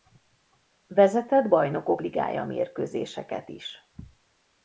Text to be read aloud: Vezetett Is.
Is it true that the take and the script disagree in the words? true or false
true